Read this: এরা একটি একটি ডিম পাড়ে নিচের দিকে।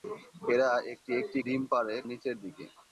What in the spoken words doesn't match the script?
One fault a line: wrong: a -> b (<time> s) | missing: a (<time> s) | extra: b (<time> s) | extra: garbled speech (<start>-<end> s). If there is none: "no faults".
no faults